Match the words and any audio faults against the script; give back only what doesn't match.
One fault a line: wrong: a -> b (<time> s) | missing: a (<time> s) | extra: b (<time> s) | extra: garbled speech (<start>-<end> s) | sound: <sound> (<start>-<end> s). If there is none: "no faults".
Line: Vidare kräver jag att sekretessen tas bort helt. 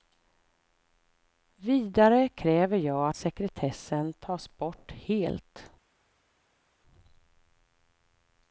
no faults